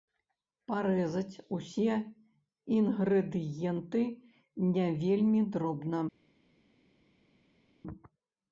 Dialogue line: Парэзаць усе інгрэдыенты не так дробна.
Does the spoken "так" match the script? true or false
false